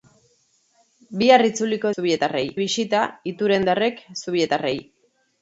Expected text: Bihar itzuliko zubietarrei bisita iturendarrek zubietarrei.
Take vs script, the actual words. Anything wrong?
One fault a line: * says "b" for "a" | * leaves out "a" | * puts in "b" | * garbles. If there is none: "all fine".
all fine